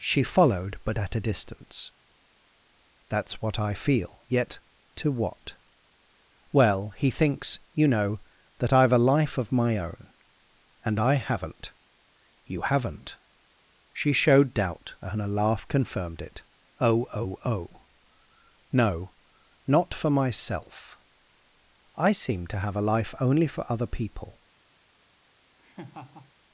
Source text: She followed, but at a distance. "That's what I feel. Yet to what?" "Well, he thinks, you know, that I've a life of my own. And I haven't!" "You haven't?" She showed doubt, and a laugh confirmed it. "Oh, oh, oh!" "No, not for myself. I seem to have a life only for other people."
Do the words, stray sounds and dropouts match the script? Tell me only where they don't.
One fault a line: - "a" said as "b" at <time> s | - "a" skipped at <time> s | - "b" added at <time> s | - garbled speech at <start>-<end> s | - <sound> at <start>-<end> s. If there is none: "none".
- laugh at 25.6-26.3 s